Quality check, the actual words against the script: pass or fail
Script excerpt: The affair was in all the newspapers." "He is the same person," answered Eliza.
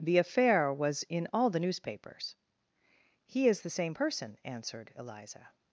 pass